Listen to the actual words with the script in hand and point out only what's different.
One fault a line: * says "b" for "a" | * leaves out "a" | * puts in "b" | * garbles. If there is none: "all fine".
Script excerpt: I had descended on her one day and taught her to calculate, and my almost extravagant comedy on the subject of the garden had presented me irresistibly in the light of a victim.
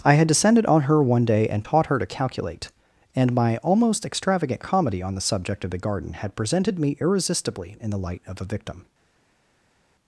all fine